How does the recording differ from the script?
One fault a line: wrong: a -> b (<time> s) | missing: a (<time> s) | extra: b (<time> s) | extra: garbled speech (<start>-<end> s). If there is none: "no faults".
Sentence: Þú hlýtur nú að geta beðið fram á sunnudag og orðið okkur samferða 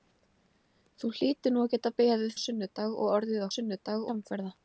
missing: fram (2.3 s)
wrong: okkur -> sunnudag (3.6 s)